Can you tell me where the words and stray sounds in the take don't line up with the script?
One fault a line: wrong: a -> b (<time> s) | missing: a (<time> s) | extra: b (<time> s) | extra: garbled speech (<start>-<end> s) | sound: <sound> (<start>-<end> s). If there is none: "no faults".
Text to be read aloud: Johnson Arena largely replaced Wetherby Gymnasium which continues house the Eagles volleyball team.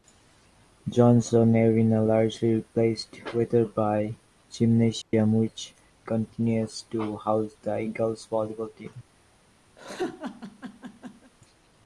sound: dropout (5.0-5.1 s)
extra: to (6.9 s)
sound: laugh (9.8-11.3 s)